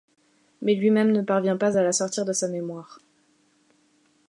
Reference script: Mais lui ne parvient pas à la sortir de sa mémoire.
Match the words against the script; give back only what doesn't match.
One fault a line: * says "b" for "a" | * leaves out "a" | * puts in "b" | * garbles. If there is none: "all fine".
* puts in "même"